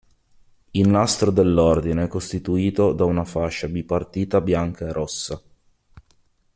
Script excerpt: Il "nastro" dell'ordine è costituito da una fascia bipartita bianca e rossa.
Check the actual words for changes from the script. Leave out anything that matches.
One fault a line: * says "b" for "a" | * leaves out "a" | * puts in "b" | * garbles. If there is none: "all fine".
all fine